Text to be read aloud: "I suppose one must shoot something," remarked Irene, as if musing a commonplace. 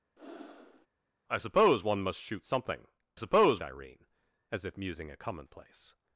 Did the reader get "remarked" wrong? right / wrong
wrong